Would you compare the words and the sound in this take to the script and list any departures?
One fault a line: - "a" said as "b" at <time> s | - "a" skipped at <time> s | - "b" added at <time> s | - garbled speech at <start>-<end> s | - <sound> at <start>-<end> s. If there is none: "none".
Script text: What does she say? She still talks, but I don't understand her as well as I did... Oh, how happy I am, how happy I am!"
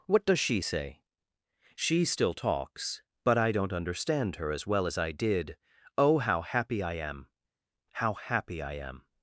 none